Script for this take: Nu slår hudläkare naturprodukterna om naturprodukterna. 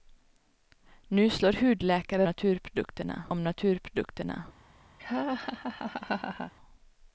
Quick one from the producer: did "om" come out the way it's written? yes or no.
yes